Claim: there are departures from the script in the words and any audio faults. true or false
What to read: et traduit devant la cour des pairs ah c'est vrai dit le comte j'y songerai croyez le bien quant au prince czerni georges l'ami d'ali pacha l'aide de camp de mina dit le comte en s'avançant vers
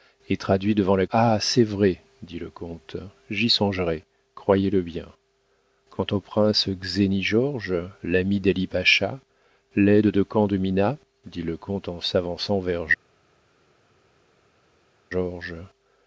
true